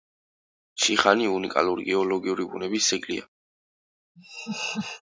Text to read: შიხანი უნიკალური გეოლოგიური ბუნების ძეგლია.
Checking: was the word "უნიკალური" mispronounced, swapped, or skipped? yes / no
no